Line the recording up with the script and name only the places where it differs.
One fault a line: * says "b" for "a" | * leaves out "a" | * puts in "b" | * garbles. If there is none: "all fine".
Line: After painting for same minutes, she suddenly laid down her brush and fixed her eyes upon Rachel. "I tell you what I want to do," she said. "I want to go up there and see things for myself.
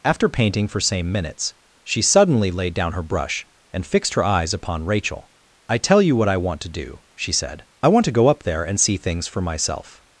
all fine